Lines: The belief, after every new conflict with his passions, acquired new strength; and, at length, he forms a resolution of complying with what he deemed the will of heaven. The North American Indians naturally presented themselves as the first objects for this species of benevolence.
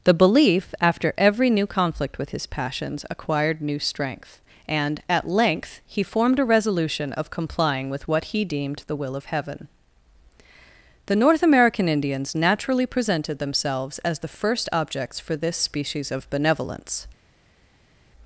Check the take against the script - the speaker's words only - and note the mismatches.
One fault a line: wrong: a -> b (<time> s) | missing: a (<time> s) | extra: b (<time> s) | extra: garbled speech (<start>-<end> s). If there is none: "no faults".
wrong: forms -> formed (6.0 s)